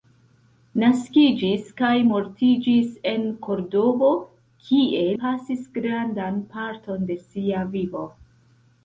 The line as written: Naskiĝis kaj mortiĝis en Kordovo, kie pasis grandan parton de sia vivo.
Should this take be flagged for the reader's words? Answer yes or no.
no